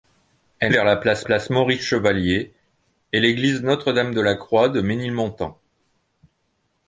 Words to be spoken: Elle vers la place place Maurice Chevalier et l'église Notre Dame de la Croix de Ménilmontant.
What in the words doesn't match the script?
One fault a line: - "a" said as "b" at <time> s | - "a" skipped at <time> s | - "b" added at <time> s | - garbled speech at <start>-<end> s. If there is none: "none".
none